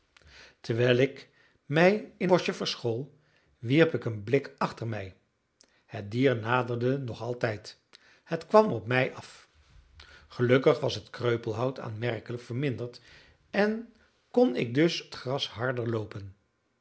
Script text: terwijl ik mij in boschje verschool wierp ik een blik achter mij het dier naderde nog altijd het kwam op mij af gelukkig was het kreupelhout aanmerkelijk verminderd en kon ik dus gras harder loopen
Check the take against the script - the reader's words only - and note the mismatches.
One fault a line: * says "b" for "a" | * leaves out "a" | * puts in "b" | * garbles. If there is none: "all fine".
all fine